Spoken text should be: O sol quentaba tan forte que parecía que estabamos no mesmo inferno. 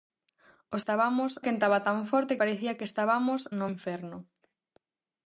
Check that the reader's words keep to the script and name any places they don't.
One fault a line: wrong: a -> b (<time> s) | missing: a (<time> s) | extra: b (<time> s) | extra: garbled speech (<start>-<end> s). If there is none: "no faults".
wrong: sol -> estabamos (0.8 s)
missing: que (2.4 s)
missing: mesmo (3.7 s)